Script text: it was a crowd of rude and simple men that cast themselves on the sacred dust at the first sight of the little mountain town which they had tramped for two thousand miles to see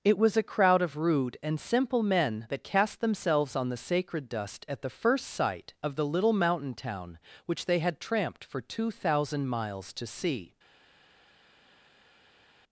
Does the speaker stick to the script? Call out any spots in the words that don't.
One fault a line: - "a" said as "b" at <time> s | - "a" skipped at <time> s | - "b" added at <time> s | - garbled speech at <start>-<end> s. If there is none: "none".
none